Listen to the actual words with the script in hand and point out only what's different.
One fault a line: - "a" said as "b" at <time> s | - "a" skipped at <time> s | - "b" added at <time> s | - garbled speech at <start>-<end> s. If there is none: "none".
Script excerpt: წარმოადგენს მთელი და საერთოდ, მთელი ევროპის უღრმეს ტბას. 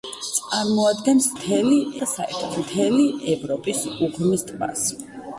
none